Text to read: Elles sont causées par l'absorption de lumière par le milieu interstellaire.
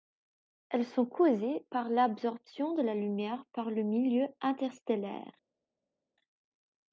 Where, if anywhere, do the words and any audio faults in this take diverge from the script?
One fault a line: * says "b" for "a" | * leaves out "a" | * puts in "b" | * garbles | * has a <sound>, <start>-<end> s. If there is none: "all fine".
* puts in "la"